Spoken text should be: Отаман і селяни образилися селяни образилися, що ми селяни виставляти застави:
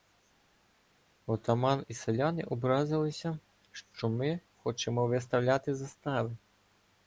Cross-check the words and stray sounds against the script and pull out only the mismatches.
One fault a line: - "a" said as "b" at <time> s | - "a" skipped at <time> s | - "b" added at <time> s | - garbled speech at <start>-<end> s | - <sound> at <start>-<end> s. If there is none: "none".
- "селяни образилися" skipped at 3.4 s
- "селяни" said as "хочемо" at 4.6 s